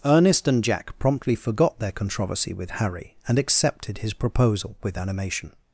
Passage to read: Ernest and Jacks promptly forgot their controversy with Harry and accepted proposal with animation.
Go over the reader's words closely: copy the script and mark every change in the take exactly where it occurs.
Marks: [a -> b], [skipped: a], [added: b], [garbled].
Ernest and [Jacks -> Jack] promptly forgot their controversy with Harry and accepted [added: his] proposal with animation.